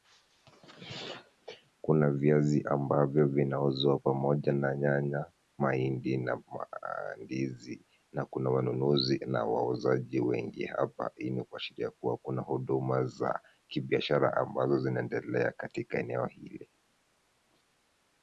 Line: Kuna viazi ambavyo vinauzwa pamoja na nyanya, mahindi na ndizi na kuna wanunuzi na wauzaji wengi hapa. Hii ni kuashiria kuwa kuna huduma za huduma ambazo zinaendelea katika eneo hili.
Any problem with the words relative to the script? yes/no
yes